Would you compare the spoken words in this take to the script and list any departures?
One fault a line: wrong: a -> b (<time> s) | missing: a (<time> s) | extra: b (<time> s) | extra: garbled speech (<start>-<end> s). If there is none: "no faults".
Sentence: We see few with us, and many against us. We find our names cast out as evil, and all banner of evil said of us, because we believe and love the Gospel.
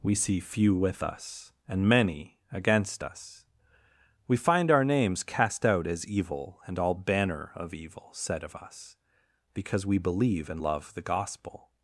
no faults